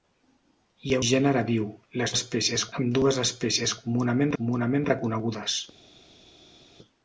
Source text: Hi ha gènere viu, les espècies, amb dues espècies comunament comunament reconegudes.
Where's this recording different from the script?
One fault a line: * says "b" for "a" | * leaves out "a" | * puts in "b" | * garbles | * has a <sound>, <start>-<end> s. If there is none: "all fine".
all fine